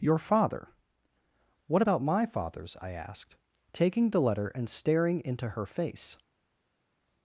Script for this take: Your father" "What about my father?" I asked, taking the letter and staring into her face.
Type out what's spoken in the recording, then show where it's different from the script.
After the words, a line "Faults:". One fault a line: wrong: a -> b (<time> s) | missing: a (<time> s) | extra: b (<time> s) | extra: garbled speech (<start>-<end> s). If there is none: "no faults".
Your father" "What about my fathers?" I asked, taking the letter and staring into her face.
Faults:
wrong: father -> fathers (2.2 s)